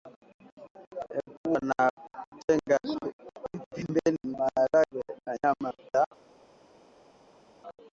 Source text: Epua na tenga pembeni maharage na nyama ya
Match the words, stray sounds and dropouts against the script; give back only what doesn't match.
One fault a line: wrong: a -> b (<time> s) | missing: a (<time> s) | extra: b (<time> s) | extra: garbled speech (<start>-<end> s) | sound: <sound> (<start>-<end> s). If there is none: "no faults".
no faults